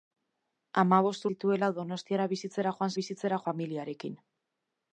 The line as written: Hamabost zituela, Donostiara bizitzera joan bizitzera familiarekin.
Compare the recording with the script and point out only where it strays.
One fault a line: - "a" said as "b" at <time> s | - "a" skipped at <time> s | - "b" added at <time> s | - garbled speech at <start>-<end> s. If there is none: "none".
none